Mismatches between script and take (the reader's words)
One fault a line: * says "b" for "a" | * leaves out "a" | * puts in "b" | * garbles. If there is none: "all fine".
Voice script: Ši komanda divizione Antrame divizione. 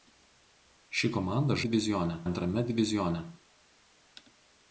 all fine